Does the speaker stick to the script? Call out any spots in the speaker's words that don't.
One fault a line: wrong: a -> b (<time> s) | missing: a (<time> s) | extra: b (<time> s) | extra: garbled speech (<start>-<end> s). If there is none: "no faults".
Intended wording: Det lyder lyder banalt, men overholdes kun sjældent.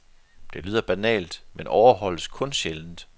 missing: lyder (0.8 s)